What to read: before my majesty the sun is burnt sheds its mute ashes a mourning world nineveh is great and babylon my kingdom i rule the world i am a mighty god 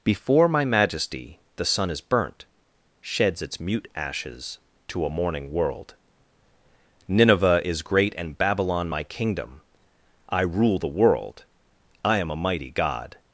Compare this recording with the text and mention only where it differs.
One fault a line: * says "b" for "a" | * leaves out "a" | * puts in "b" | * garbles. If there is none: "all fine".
* puts in "to"